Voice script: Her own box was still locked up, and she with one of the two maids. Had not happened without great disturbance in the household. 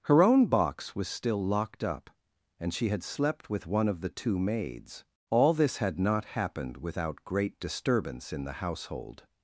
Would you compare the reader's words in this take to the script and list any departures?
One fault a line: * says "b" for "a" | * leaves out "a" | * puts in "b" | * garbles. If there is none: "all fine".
* puts in "had slept"
* puts in "All this"